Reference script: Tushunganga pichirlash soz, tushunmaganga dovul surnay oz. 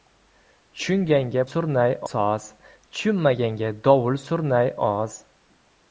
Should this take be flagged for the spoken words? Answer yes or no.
yes